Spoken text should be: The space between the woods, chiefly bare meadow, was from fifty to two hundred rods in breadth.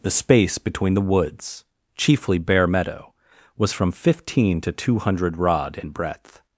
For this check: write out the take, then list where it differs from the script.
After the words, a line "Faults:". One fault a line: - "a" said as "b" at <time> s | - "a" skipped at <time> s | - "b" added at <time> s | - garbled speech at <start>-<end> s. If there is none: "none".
The space between the woods, chiefly bare meadow, was from fifteen to two hundred rod in breadth.
Faults:
- "fifty" said as "fifteen" at 3.9 s
- "rods" said as "rod" at 5.4 s